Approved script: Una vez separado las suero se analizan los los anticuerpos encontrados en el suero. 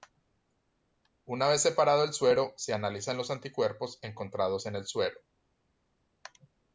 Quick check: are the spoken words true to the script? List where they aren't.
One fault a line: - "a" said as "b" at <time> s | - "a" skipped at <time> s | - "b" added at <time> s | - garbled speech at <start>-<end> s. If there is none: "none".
- "las" said as "el" at 2.0 s
- "los" skipped at 3.3 s